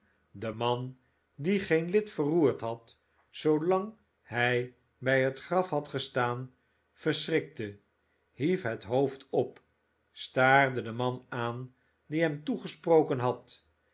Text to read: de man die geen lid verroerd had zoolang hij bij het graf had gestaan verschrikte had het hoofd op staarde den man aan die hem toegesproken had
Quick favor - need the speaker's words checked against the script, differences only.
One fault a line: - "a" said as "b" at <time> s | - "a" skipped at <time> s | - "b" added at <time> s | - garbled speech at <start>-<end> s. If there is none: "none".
- "had" said as "hief" at 8.3 s